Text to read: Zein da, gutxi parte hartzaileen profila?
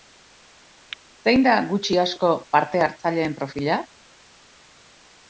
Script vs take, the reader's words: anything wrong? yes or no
yes